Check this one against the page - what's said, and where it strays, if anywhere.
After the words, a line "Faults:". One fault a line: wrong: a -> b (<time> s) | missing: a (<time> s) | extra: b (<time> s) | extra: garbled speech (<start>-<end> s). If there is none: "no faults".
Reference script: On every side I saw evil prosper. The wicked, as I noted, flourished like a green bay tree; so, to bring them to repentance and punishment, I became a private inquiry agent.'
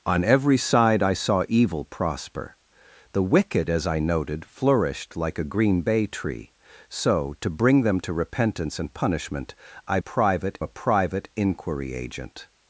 On every side I saw evil prosper. The wicked, as I noted, flourished like a green bay tree; so, to bring them to repentance and punishment, I private a private inquiry agent.'
Faults:
wrong: became -> private (10.0 s)